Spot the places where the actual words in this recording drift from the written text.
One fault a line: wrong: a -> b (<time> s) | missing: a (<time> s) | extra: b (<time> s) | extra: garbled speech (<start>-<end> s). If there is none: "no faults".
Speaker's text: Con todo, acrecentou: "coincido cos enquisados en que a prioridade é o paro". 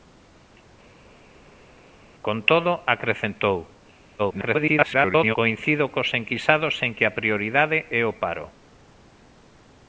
extra: garbled speech (4.2-5.4 s)